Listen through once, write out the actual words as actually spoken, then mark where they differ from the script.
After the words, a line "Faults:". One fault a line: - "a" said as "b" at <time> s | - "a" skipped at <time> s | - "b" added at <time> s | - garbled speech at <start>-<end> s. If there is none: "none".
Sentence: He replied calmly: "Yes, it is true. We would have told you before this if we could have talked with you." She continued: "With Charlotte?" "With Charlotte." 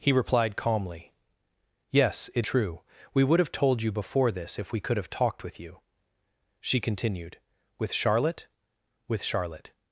He replied calmly: "Yes, it true. We would have told you before this if we could have talked with you." She continued: "With Charlotte?" "With Charlotte."
Faults:
- "is" skipped at 2.5 s